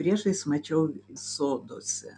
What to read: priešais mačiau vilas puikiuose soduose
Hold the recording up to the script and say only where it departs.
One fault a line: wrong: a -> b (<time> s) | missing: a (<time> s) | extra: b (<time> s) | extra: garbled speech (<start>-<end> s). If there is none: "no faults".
missing: vilas puikiuose (0.9 s)